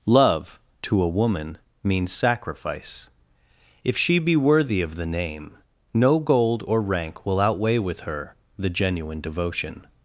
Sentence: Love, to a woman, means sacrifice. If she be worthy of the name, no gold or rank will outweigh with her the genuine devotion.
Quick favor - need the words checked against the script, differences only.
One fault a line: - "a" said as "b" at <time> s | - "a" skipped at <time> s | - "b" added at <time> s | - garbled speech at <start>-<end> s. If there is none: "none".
none